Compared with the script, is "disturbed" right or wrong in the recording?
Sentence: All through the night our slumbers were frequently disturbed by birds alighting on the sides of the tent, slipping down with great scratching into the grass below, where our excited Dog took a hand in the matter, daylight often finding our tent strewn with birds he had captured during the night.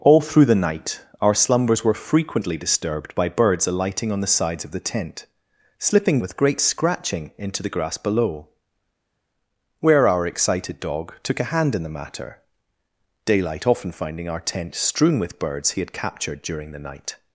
right